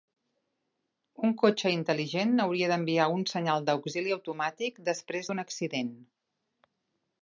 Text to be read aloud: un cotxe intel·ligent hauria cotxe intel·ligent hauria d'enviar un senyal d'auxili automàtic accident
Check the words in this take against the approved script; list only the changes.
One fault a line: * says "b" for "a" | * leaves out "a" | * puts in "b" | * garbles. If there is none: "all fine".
* leaves out "cotxe intel·ligent hauria"
* puts in "després d'un"